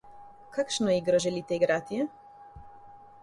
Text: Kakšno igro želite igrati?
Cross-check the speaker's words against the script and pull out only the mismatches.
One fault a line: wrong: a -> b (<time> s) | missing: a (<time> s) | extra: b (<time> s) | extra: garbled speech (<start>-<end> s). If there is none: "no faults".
no faults